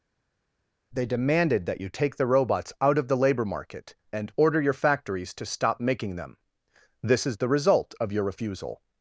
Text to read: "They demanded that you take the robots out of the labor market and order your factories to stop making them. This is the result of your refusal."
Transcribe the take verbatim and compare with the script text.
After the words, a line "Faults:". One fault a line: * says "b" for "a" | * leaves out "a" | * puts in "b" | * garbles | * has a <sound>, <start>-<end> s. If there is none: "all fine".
"They demanded that you take the robots out of the labor market and order your factories to stop making them. This is the result of your refusal."
Faults:
all fine